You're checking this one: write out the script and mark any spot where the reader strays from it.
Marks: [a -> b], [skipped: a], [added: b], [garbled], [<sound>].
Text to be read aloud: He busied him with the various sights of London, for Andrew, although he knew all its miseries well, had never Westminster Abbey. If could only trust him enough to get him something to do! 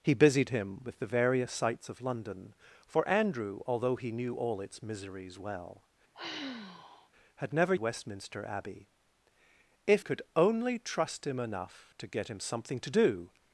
He busied him with the various sights of London, for Andrew, although he knew all its miseries well, [sigh] had never Westminster Abbey. If could only trust him enough to get him something to do!